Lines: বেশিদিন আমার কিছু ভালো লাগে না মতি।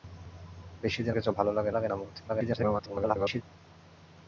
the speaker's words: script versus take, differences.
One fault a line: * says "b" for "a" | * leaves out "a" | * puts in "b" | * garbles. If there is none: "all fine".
* leaves out "আমার"
* puts in "লাগে"
* garbles